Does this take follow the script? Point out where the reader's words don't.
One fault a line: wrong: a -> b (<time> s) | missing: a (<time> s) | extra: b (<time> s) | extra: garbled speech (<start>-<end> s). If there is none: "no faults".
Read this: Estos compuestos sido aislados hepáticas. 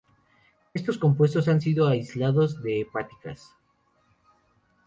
extra: han (1.5 s)
extra: de (2.6 s)